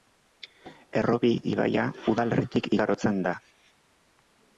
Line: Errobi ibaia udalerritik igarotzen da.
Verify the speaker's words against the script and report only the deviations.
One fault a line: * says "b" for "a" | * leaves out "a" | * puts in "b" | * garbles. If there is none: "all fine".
all fine